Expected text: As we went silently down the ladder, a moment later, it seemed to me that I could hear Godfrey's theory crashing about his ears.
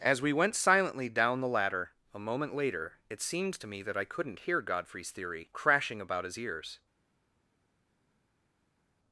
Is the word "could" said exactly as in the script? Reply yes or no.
no